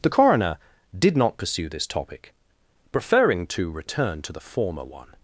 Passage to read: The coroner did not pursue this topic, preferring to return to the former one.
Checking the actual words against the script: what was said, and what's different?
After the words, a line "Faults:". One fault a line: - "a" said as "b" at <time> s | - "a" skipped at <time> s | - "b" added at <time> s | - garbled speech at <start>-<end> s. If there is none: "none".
The coroner did not pursue this topic, preferring to return to the former one.
Faults:
none